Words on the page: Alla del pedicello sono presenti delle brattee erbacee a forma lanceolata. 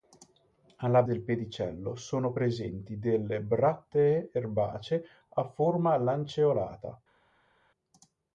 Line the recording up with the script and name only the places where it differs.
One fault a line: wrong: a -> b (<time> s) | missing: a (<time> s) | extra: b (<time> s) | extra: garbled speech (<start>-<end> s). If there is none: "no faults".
no faults